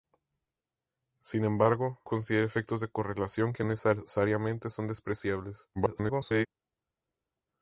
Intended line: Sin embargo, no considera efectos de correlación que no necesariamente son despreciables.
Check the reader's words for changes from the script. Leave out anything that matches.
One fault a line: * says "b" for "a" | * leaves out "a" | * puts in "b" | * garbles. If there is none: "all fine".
* leaves out "no"
* leaves out "no"
* garbles